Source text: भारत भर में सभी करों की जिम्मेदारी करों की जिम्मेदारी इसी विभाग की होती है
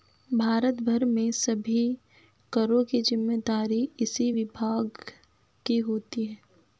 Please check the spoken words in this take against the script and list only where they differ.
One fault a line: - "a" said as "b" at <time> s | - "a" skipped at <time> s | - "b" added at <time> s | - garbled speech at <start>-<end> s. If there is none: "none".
- "करों की जिम्मेदारी" skipped at 3.8 s